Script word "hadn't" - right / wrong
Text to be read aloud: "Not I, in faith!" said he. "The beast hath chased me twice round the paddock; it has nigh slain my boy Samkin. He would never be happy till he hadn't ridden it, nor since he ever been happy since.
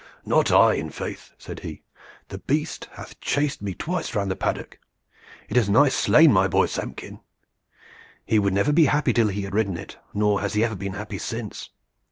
wrong